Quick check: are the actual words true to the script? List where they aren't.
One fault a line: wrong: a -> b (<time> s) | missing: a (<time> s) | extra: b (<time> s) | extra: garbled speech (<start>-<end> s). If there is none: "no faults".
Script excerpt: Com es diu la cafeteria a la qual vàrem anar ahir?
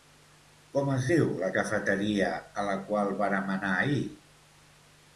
no faults